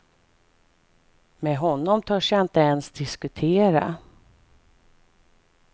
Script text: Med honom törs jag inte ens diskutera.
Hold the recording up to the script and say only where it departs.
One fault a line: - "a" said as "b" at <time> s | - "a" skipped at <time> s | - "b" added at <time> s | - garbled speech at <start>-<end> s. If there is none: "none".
none